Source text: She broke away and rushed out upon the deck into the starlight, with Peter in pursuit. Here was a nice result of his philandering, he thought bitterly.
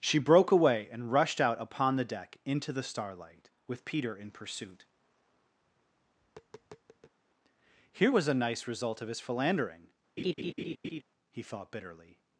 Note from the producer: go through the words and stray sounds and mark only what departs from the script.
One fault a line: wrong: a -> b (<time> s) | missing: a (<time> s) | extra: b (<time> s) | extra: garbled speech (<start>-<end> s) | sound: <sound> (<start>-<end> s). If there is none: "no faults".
sound: tap (5.6-7.2 s)
sound: laugh (10.2-11.0 s)